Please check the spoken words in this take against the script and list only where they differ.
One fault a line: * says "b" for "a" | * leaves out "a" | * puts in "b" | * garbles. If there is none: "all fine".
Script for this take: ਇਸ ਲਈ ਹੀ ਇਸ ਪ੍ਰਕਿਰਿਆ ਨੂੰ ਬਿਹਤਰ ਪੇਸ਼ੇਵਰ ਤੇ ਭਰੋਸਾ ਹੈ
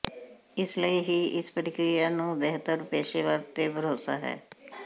all fine